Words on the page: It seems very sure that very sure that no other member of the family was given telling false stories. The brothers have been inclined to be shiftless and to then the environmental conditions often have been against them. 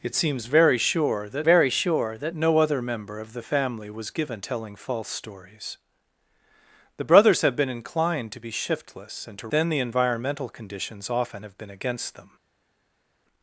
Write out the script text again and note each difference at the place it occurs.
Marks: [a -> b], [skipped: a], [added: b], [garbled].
It seems very sure that very sure that no other member of the family was given telling false stories. The brothers have been inclined to be shiftless and to then the environmental conditions often have been against them.